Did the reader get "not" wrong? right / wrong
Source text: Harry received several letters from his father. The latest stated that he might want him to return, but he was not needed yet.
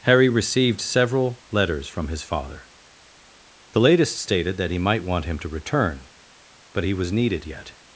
wrong